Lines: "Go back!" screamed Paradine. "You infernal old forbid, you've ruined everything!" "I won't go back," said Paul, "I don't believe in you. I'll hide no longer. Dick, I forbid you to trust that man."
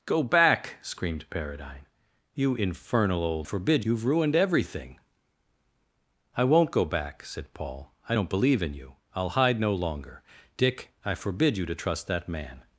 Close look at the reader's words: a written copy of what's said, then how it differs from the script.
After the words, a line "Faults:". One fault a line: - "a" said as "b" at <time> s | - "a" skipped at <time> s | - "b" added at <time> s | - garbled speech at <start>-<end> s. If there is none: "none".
"Go back!" screamed Paradine. "You infernal old forbid, you've ruined everything!" "I won't go back," said Paul, "I don't believe in you. I'll hide no longer. Dick, I forbid you to trust that man."
Faults:
none